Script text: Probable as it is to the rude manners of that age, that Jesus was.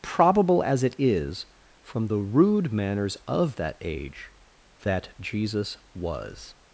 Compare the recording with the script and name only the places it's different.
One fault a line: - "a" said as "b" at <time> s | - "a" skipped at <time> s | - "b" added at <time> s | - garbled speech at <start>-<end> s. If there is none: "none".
- "to" said as "from" at 1.8 s